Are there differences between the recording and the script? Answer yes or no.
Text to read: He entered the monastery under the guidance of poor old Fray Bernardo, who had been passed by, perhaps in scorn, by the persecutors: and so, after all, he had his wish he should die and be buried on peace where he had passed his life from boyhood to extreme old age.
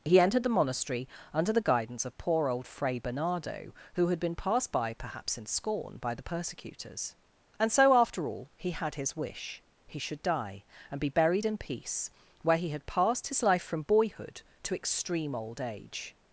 yes